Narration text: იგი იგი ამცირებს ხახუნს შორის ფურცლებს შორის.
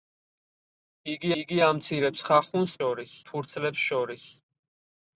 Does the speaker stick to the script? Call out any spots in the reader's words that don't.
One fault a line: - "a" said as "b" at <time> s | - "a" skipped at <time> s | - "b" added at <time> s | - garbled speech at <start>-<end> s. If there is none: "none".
none